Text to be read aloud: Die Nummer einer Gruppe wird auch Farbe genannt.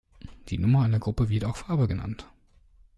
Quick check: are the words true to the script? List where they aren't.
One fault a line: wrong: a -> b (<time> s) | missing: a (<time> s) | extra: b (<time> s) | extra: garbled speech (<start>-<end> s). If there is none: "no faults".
no faults